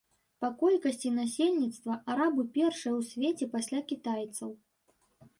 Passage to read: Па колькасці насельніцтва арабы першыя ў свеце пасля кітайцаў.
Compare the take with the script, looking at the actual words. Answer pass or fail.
pass